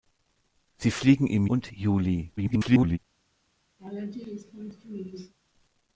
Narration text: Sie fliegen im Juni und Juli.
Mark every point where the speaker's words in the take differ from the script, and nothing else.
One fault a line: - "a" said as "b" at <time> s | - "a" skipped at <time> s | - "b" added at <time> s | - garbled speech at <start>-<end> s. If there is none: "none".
- "Juni" skipped at 1.4 s
- garbled speech at 2.4-3.0 s